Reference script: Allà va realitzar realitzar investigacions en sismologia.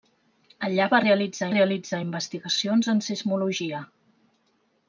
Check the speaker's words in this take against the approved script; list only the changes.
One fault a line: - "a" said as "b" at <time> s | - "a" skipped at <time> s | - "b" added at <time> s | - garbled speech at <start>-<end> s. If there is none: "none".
none